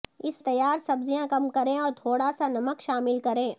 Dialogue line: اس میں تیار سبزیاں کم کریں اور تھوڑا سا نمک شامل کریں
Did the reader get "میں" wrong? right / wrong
wrong